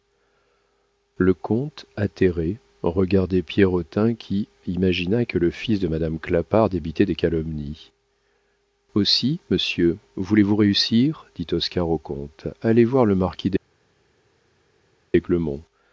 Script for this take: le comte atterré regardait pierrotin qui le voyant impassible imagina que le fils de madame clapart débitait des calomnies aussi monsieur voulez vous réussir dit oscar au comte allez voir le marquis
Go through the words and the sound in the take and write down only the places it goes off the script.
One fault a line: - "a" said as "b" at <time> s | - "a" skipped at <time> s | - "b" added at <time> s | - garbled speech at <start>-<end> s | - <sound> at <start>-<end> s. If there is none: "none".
- "le voyant impassible" skipped at 4.5 s